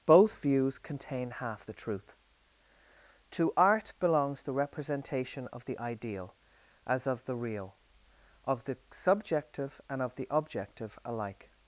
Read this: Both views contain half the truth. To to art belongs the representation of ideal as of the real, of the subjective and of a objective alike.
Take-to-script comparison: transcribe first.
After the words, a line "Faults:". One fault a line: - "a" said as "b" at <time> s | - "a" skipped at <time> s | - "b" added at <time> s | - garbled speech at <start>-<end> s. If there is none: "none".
Both views contain half the truth. To art belongs the representation of the ideal as of the real, of the subjective and of the objective alike.
Faults:
- "to" skipped at 3.5 s
- "the" added at 5.6 s
- "a" said as "the" at 10.1 s